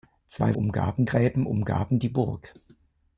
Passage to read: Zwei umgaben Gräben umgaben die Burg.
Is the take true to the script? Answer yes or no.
yes